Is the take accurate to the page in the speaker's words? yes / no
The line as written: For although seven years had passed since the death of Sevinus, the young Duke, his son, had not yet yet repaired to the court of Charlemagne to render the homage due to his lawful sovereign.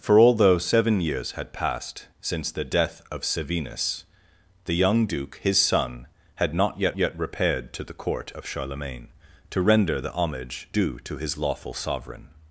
yes